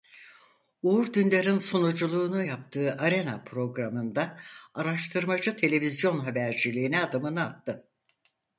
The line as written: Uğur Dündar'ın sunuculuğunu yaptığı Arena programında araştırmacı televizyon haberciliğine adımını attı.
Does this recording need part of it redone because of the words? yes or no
no